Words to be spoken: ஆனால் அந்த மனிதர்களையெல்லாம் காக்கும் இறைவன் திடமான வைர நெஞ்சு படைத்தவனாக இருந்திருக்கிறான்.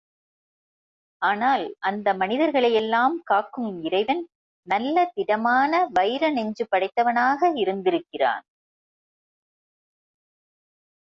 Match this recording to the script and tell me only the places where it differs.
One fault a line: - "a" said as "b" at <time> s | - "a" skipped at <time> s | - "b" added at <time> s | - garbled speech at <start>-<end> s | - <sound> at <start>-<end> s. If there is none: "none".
- "நல்ல" added at 4.7 s